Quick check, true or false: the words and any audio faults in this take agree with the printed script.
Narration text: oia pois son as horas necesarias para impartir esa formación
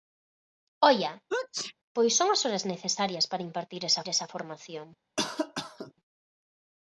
false